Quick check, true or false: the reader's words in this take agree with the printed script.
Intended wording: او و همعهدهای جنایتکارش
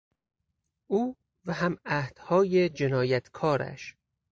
true